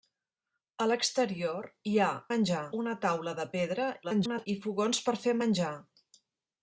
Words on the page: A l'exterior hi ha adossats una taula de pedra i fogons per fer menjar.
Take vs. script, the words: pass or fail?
fail